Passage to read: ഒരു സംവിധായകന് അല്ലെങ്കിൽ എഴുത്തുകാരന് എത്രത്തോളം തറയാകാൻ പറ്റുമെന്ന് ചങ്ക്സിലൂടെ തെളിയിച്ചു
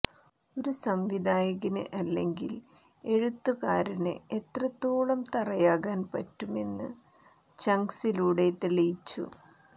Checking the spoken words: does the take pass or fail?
pass